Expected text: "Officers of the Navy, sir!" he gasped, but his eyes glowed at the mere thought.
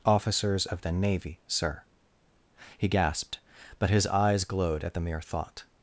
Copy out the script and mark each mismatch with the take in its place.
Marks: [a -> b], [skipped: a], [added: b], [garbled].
"Officers of the Navy, sir!" he gasped, but his eyes glowed at the mere thought.